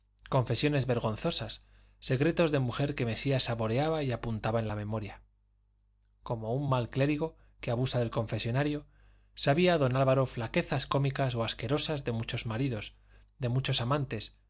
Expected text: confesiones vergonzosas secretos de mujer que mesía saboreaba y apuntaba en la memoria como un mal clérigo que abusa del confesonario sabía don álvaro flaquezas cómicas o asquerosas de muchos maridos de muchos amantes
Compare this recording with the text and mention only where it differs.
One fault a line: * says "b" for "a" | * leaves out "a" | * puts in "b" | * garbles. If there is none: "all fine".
all fine